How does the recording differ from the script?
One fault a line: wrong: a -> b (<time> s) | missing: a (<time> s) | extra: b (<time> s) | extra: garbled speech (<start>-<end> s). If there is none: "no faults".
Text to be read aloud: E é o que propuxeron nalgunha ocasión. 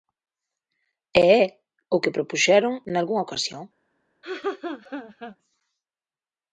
no faults